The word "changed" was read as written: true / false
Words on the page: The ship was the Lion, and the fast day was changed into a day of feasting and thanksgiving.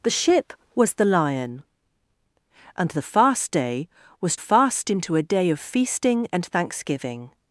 false